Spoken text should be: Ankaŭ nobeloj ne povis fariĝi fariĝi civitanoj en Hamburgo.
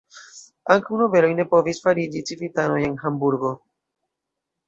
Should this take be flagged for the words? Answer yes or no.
yes